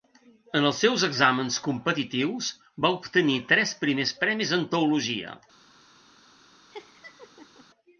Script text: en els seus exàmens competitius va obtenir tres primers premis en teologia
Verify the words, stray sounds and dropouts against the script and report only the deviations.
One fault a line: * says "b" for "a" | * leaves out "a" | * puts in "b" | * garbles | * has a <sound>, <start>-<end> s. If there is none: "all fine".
* has a laugh, 6.7-7.7 s